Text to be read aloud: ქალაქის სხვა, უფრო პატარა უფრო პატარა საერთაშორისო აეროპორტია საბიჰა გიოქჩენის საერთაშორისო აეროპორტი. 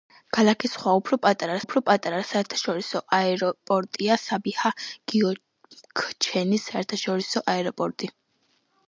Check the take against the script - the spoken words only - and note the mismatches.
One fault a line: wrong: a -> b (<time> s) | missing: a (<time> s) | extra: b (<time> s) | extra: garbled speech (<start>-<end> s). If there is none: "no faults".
no faults